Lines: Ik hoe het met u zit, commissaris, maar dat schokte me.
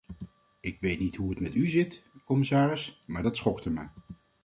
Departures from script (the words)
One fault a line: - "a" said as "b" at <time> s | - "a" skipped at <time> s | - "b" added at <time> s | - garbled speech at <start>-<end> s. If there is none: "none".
- "weet niet" added at 0.8 s